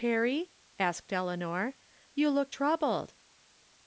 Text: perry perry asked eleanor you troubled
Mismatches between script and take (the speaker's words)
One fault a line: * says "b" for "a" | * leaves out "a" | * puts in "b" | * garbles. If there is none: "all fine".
* leaves out "perry"
* puts in "look"